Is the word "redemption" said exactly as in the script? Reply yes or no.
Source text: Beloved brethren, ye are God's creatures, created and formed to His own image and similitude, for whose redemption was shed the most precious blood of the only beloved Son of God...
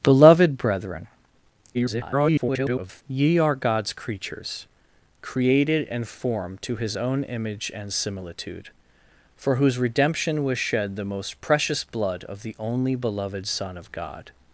yes